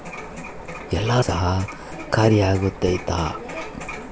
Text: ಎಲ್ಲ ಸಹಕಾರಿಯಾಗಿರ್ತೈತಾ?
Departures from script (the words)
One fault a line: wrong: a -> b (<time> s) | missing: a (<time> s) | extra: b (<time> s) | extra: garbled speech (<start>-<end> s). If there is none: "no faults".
no faults